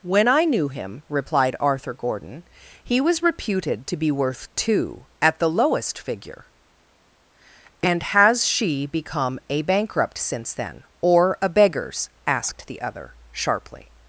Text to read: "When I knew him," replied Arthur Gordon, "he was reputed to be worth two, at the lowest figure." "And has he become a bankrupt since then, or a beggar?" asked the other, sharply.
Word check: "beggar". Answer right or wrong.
wrong